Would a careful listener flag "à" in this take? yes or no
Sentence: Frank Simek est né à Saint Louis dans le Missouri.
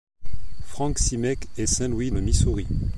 yes